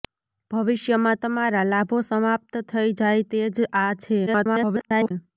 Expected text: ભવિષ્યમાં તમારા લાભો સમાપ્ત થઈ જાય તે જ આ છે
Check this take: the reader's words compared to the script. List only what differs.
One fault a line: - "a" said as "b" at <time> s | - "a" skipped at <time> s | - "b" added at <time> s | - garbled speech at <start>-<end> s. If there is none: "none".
- garbled speech at 4.3-5.1 s